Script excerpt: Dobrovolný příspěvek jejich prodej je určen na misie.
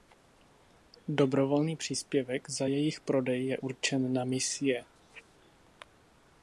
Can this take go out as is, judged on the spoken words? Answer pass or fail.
fail